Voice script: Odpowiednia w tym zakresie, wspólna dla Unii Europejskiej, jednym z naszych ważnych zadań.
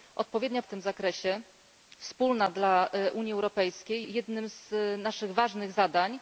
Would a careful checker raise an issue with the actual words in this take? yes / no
no